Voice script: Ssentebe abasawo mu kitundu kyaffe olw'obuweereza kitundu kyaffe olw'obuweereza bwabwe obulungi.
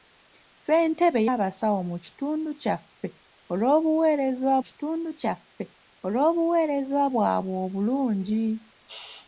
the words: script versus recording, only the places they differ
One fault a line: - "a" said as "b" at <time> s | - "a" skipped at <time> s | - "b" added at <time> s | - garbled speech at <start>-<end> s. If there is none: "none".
none